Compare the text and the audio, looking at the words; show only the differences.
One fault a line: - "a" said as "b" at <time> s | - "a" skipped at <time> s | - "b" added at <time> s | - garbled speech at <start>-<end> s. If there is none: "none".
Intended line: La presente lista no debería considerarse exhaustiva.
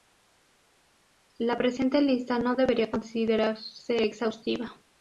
none